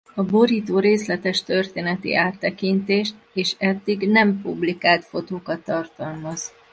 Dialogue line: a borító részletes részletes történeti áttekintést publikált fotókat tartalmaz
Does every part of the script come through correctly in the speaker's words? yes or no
no